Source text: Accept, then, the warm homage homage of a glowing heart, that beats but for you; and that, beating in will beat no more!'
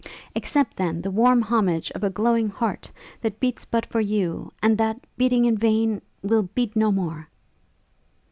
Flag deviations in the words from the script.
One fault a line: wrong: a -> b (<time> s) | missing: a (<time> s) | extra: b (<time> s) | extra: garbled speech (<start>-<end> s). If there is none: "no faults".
missing: homage (1.9 s)
extra: vain (5.6 s)